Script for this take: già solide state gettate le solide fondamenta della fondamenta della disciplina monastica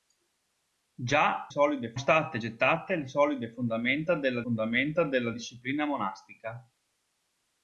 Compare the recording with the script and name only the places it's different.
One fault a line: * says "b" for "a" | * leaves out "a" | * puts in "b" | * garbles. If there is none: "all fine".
all fine